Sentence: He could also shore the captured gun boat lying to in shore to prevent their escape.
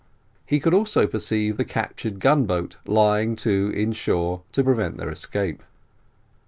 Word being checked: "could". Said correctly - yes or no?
yes